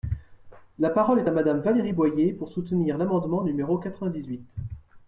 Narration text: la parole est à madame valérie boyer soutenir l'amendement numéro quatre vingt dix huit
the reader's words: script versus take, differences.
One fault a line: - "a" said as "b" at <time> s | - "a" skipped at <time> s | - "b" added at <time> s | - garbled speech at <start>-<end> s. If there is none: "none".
- "pour" added at 2.3 s